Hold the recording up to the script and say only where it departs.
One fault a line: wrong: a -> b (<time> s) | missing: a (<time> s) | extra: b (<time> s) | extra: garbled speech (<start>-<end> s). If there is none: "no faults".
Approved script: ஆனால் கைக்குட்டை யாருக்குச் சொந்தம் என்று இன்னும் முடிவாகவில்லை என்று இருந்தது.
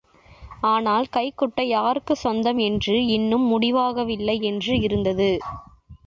no faults